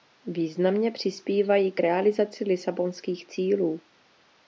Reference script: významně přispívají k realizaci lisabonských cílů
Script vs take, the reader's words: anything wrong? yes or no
no